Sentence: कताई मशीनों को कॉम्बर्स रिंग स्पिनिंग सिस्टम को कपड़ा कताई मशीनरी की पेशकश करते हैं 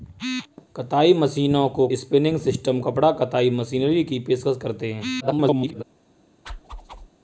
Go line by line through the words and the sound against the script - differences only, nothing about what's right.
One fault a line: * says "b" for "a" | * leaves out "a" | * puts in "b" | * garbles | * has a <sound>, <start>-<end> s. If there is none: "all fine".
* leaves out "कॉम्बर्स रिंग"
* leaves out "को"
* garbles
* has a whoosh, 6.4-7.1 s